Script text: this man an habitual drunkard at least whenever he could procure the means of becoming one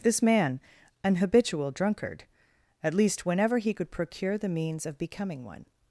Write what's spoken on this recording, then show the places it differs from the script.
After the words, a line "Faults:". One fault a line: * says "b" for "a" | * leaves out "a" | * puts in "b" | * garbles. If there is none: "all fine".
this man an habitual drunkard at least whenever he could procure the means of becoming one
Faults:
all fine